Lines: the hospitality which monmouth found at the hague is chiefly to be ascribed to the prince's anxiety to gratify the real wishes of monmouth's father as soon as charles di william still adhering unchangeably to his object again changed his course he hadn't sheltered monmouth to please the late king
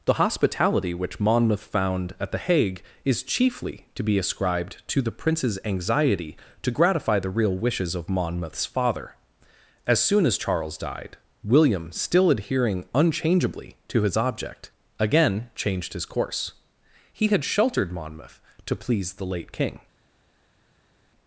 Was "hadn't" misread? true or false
true